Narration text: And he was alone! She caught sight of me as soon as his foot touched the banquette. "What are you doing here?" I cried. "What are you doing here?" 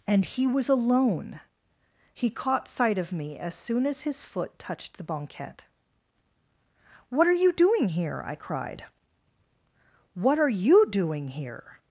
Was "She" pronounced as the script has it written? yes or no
no